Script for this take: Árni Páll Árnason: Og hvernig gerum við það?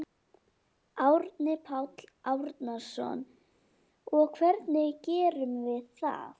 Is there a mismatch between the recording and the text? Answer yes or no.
no